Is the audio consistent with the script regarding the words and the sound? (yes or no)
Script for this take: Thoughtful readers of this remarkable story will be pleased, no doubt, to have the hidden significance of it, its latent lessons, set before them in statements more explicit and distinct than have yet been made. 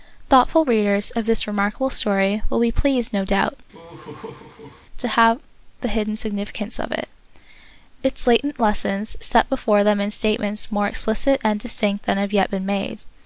no